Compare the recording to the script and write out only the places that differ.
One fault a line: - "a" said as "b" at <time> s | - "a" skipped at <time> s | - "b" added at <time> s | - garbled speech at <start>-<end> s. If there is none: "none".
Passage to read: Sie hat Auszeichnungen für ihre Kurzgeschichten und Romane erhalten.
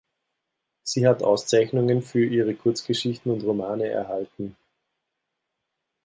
none